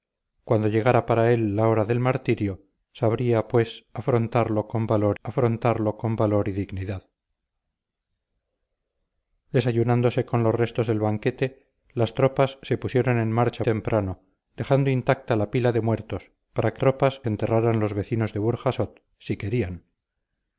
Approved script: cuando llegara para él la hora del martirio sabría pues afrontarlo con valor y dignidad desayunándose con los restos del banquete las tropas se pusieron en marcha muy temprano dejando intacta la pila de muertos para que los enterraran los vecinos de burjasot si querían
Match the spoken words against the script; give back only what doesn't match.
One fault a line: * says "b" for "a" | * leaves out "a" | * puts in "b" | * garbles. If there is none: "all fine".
* puts in "afrontarlo con valor"
* leaves out "muy"
* says "tropas" for "los"